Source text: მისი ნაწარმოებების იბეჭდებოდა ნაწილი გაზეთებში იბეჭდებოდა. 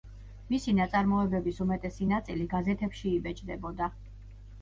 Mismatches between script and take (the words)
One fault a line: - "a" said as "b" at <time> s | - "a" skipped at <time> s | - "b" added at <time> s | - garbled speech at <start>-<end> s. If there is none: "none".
- "იბეჭდებოდა" said as "უმეტესი" at 1.6 s